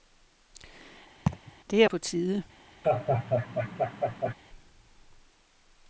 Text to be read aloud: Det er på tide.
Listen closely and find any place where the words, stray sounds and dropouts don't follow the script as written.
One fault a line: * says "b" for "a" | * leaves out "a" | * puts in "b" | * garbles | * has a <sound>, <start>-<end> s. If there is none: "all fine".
* has a laugh, 1.3-1.5 s
* has a laugh, 2.8-4.3 s